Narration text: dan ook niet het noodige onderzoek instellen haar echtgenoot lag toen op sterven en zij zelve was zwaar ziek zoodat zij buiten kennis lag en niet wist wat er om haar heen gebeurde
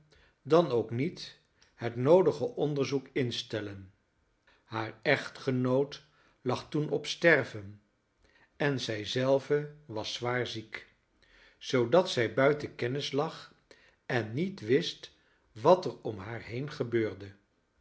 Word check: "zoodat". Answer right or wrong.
right